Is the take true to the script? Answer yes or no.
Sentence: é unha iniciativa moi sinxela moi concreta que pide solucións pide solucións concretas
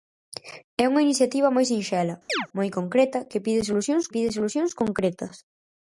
yes